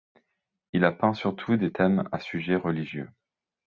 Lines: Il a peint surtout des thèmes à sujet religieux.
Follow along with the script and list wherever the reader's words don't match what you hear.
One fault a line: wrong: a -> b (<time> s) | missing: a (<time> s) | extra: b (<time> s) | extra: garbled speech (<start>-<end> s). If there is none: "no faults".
no faults